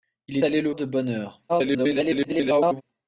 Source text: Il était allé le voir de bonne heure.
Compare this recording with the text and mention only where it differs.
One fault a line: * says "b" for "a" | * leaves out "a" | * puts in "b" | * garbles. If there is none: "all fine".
* leaves out "était"
* leaves out "voir"
* garbles